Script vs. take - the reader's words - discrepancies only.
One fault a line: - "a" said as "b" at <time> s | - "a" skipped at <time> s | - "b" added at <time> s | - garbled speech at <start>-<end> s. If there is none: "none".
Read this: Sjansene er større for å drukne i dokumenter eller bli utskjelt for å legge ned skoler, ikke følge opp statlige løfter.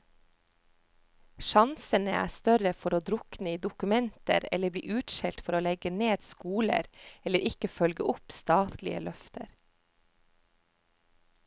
- "eller" added at 7.2 s